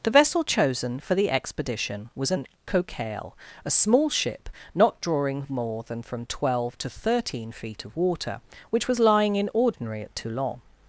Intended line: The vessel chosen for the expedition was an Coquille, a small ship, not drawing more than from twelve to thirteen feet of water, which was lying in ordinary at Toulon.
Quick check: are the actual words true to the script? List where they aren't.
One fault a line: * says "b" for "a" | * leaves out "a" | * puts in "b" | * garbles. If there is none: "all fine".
all fine